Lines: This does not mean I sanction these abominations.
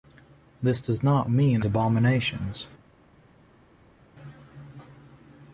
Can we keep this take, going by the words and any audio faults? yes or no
no